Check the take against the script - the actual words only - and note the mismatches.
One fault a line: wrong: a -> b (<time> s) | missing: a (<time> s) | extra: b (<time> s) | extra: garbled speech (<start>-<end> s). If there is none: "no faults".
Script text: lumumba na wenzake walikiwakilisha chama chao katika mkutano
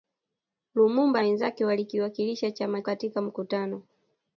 missing: na (1.2 s)
missing: chao (2.8 s)